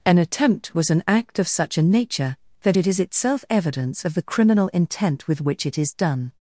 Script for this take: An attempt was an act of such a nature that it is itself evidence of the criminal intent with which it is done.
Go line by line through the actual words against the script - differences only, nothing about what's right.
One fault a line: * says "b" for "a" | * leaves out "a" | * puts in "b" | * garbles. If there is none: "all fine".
all fine